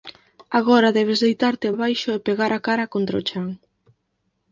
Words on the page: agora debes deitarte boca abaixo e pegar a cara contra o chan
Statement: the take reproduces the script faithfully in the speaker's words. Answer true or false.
false